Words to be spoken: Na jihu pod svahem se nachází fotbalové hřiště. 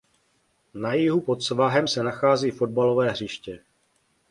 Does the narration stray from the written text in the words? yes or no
no